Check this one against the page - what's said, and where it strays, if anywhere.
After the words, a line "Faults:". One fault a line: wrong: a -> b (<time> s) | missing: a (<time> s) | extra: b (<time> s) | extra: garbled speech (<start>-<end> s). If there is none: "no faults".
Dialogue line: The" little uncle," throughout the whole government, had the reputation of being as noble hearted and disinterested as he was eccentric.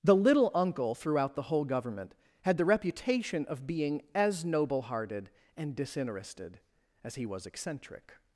The" little uncle," throughout the whole government, had the reputation of being as noble hearted and disinterested as he was eccentric.
Faults:
no faults